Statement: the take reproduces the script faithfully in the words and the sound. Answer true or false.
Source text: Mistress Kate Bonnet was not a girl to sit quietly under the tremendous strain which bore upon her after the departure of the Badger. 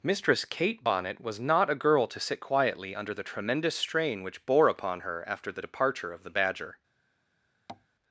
false